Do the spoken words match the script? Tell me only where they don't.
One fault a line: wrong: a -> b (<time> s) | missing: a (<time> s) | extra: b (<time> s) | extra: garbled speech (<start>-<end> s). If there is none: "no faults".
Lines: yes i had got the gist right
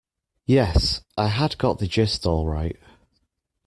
extra: all (2.2 s)